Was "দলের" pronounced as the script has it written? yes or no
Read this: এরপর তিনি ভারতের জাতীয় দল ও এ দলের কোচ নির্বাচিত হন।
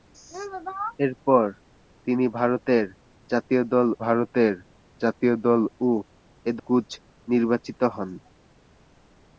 no